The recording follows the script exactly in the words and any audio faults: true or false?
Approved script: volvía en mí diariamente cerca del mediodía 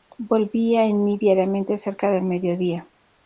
true